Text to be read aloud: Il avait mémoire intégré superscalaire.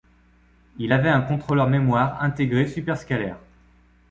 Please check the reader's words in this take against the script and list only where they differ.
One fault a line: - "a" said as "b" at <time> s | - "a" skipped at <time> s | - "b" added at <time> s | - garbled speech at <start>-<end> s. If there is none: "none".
- "un contrôleur" added at 1.1 s